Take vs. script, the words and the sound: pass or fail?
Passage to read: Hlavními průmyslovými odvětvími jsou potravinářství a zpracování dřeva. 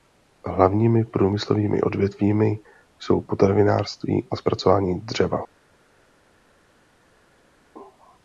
pass